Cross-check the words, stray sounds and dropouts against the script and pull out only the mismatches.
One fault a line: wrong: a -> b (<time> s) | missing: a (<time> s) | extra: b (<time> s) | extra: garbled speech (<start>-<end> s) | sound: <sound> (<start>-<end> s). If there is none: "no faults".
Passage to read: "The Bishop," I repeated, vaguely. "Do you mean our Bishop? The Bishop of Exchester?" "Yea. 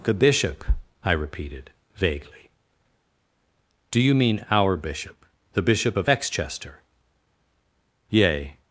no faults